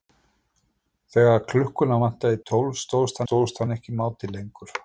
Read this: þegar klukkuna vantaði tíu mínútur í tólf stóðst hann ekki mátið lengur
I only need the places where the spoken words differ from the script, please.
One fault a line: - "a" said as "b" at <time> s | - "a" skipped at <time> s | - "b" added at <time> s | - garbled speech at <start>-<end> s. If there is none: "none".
- "tíu mínútur" skipped at 2.4 s
- "stóðst" added at 3.2 s